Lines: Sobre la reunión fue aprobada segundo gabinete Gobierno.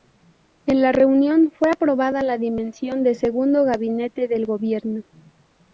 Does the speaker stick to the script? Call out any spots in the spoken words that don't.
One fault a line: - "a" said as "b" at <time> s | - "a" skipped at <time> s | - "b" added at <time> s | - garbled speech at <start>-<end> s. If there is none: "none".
- "Sobre" said as "En" at 0.7 s
- "la dimisión de" added at 2.2 s
- "del" added at 4.3 s